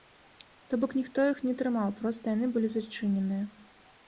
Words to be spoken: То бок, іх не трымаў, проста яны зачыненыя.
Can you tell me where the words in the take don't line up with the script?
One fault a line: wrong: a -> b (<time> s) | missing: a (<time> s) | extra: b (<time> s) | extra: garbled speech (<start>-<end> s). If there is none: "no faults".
extra: ніхто (1.0 s)
extra: былі (2.6 s)